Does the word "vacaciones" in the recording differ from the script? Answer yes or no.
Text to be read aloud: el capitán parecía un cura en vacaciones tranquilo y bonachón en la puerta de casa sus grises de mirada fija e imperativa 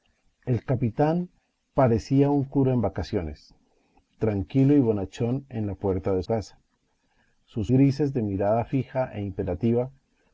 no